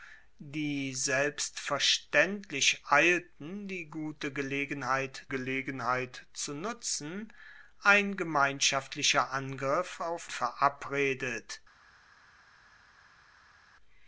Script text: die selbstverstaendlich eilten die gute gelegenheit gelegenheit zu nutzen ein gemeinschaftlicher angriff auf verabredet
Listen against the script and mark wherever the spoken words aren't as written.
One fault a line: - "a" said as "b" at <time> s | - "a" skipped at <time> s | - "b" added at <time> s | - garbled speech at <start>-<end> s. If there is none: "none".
none